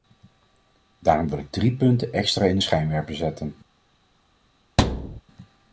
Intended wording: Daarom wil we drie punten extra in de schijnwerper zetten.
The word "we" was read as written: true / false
false